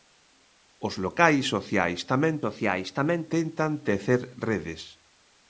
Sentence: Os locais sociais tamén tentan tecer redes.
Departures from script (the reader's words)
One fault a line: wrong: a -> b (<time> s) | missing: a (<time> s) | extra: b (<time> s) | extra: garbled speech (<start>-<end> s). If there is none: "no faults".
extra: sociais tamén (2.4 s)